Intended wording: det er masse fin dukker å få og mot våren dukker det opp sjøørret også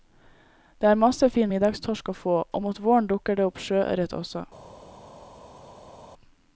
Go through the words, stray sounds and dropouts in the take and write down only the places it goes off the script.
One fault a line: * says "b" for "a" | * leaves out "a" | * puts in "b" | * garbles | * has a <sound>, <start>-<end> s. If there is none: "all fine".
* says "middagstorsk" for "dukker"